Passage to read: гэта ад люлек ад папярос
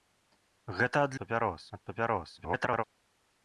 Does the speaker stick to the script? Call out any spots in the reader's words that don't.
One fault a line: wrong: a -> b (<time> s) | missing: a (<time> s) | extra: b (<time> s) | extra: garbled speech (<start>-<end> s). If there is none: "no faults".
wrong: люлек -> папярос (1.2 s)
extra: garbled speech (2.4-2.8 s)